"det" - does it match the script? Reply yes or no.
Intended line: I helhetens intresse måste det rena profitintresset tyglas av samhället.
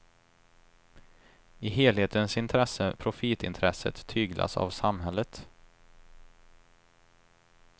no